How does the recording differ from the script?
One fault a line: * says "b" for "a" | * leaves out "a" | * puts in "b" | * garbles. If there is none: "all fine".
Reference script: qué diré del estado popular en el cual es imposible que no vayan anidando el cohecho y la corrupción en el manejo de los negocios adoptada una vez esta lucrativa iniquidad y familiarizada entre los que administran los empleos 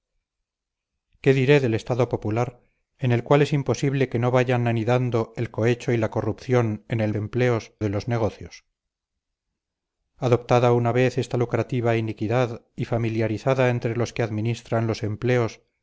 * says "empleos" for "manejo"